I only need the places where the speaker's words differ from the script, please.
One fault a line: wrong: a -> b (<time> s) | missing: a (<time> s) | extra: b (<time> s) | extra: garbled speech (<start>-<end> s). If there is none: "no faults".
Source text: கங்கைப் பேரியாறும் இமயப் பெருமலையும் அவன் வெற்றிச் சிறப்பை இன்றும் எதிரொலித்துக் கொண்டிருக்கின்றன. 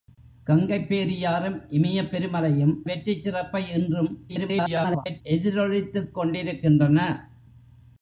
missing: அவன் (2.7 s)
extra: garbled speech (4.3-5.2 s)